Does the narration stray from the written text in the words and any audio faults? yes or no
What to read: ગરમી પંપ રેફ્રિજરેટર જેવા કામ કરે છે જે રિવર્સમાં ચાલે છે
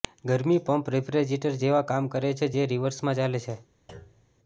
yes